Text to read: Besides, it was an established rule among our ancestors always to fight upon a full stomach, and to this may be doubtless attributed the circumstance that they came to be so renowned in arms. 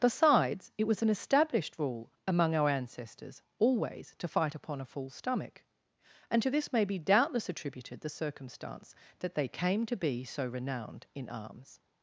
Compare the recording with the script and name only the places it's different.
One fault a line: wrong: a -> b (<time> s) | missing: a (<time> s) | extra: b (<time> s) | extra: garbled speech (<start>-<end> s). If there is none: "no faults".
no faults